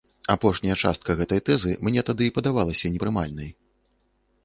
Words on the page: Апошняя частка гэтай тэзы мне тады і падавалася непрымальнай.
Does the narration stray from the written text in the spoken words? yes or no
no